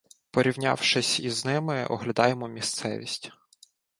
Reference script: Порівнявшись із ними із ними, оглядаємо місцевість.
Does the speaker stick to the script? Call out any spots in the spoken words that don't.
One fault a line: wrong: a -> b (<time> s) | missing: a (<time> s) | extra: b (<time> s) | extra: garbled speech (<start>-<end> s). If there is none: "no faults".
missing: із ними (1.9 s)